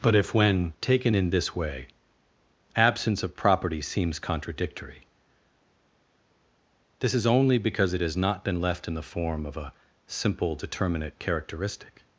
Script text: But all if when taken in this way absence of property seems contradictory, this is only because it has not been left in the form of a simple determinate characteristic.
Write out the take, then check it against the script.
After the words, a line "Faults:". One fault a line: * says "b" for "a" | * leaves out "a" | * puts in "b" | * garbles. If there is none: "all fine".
But if when taken in this way absence of property seems contradictory, this is only because it has not been left in the form of a simple determinate characteristic.
Faults:
* leaves out "all"